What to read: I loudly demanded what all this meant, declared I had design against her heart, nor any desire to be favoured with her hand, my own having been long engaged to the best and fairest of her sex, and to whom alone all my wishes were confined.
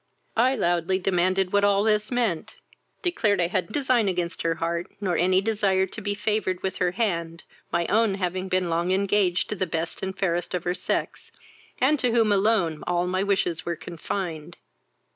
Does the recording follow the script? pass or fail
pass